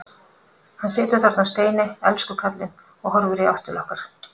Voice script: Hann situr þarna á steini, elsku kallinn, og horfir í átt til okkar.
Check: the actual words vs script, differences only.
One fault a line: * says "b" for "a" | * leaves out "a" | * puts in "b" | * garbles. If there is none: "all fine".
all fine